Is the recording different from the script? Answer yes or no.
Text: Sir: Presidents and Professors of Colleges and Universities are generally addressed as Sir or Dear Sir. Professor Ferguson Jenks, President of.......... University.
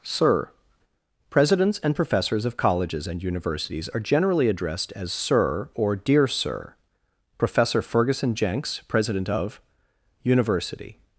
no